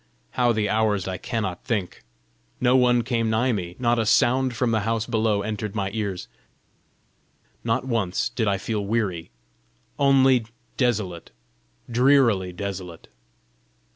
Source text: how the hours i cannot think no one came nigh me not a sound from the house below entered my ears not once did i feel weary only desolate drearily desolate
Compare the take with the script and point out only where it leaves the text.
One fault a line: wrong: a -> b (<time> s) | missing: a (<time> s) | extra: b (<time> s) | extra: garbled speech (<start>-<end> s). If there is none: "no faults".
no faults